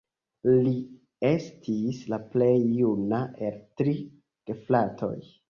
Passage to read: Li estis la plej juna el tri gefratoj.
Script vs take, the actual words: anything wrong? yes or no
no